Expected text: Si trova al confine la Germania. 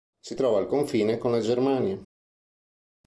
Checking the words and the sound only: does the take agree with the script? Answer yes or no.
no